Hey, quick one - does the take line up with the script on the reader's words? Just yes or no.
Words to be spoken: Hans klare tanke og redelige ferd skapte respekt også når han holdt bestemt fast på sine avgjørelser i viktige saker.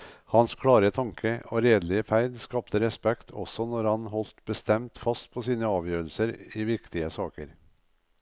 yes